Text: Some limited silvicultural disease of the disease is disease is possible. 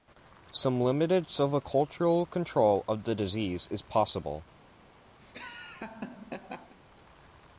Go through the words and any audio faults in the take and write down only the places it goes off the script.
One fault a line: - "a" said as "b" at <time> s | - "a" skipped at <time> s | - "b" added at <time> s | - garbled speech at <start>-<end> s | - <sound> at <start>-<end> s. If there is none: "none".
- "disease" said as "control" at 2.3 s
- "disease is" skipped at 3.8 s
- laugh at 5.2-6.8 s